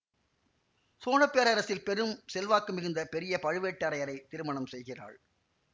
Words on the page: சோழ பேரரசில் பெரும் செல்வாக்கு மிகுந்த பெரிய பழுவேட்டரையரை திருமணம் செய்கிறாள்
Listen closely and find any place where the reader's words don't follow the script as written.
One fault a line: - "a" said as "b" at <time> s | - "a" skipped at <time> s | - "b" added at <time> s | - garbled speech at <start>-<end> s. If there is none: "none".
none